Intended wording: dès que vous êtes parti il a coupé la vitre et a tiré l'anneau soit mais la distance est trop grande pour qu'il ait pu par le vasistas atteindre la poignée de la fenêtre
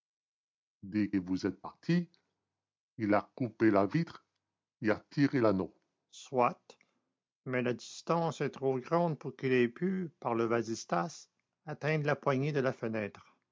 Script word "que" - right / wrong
wrong